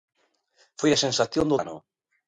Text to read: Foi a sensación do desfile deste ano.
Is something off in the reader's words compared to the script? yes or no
yes